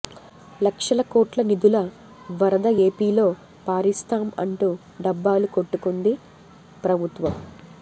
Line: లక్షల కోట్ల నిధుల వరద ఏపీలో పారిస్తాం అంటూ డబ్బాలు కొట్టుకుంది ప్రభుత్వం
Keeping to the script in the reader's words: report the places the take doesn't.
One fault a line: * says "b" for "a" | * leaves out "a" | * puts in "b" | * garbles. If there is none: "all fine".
all fine